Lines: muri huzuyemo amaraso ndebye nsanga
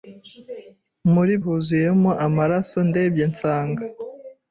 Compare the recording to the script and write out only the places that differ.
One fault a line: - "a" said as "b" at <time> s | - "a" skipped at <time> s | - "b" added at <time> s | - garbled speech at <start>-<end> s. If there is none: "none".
none